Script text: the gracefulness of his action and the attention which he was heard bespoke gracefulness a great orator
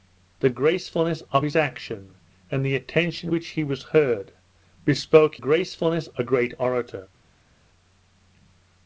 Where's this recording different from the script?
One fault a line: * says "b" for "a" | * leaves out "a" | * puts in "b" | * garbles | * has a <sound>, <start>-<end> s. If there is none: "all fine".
all fine